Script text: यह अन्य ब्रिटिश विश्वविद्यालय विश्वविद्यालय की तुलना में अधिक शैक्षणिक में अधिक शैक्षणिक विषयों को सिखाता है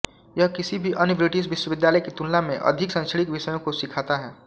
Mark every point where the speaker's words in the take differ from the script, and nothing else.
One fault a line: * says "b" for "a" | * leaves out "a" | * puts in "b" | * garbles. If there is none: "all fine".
* puts in "किसी भी"
* leaves out "विश्वविद्यालय"
* leaves out "में अधिक शैक्षणिक"